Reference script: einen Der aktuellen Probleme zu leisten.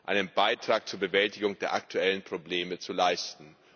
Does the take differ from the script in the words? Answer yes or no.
yes